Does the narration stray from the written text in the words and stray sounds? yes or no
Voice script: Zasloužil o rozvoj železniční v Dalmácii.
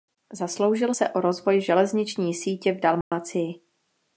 yes